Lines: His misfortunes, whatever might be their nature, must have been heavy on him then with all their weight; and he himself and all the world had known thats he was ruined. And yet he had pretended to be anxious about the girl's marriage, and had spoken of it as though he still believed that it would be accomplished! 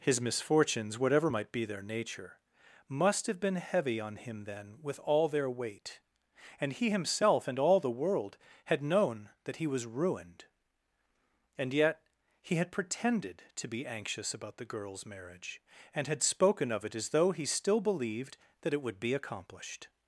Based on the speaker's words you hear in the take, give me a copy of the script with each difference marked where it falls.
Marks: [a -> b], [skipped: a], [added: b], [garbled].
His misfortunes, whatever might be their nature, must have been heavy on him then with all their weight; and he himself and all the world had known [thats -> that] he was ruined. And yet he had pretended to be anxious about the girl's marriage, and had spoken of it as though he still believed that it would be accomplished!